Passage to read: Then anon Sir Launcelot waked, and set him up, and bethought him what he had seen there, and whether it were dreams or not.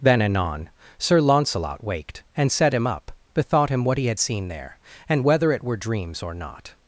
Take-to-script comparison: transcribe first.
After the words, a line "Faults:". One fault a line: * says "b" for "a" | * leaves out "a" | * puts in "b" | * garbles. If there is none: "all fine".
Then anon Sir Launcelot waked, and set him up, bethought him what he had seen there, and whether it were dreams or not.
Faults:
* leaves out "and"